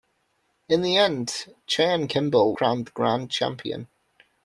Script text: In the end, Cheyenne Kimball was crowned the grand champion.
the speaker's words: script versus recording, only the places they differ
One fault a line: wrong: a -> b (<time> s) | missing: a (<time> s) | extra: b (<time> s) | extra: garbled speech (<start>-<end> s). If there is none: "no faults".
missing: was (2.5 s)